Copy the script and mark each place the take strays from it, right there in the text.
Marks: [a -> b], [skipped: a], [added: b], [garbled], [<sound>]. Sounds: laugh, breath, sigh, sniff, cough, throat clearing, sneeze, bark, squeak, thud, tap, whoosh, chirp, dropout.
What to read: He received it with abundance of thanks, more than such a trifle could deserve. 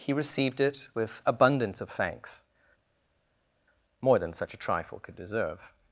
He received it with abundance of thanks, more than such a trifle could deserve.